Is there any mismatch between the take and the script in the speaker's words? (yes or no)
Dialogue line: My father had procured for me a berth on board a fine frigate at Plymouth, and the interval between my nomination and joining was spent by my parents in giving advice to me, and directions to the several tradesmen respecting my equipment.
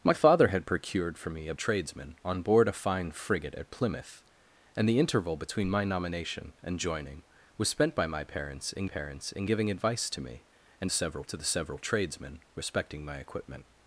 yes